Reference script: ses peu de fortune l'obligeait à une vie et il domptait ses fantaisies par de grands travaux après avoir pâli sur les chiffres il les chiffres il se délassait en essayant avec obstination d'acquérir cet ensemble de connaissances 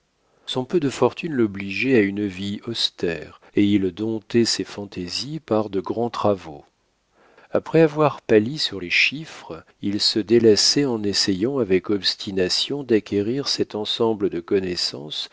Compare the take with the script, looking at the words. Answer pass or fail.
fail